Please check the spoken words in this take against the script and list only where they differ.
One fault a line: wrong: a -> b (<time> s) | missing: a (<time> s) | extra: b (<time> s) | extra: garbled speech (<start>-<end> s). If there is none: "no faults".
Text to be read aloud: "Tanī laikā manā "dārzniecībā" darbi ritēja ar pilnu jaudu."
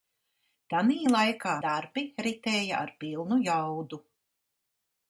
missing: manā dārzniecībā (1.6 s)